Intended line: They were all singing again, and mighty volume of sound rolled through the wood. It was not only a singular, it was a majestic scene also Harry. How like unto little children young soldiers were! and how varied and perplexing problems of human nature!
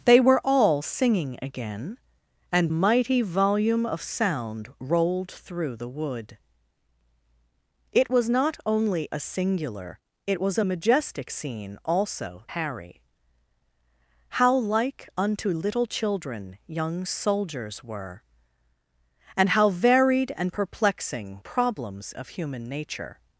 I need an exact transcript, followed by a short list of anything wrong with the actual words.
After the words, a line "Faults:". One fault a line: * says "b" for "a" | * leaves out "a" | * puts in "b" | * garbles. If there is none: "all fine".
They were all singing again, and mighty volume of sound rolled through the wood. It was not only a singular, it was a majestic scene also Harry. How like unto little children young soldiers were! and how varied and perplexing problems of human nature!
Faults:
all fine